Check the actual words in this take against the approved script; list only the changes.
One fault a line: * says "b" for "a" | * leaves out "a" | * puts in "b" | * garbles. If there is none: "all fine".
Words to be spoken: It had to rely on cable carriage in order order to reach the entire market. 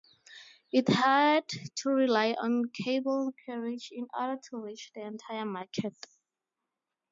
* leaves out "order"